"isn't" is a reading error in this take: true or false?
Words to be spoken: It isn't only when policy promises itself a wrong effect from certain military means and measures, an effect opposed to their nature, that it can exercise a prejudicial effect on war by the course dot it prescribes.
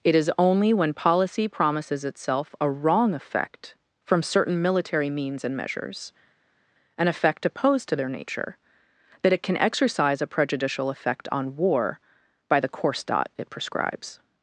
true